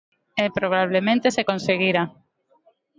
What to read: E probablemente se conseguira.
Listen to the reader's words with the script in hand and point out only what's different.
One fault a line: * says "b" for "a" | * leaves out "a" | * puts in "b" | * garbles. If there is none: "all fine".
all fine